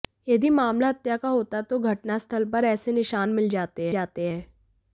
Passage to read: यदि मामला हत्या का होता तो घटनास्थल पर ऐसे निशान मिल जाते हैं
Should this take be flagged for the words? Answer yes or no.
yes